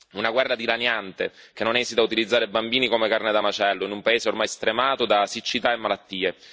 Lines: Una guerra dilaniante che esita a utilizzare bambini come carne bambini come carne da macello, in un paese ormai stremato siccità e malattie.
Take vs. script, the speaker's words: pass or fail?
fail